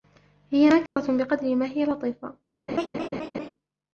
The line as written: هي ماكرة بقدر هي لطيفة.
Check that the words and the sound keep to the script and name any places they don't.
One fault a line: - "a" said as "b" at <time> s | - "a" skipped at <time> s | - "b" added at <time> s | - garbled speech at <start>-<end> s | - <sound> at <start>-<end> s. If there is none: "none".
- dropout at 0.9-1.0 s
- "ما" added at 1.5 s
- laugh at 2.7-3.5 s